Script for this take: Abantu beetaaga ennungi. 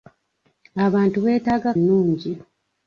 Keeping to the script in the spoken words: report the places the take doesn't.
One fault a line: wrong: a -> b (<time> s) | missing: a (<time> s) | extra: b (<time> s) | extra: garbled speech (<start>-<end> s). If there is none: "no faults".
no faults